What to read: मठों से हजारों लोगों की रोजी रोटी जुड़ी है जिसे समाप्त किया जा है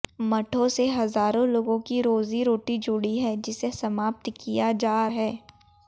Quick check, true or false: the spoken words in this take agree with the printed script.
true